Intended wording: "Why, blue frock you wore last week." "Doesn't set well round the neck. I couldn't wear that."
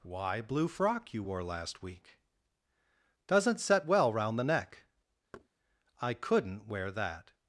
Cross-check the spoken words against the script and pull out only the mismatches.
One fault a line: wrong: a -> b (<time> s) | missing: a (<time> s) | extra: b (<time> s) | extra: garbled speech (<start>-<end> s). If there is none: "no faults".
no faults